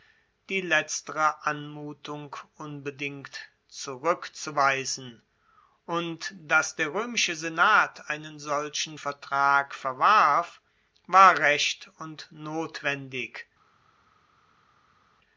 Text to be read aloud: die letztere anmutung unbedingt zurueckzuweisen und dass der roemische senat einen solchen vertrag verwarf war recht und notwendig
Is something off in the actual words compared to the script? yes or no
no